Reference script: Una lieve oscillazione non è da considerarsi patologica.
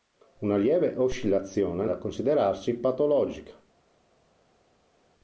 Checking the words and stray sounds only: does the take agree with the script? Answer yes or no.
no